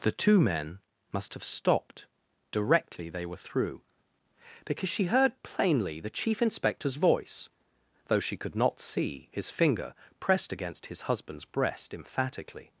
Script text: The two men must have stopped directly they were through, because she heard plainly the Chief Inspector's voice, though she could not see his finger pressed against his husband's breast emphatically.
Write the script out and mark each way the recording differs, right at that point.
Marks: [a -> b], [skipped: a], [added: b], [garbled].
The two men must have stopped directly they were through, because she heard plainly the Chief Inspector's voice, though she could not see his finger pressed against his husband's breast emphatically.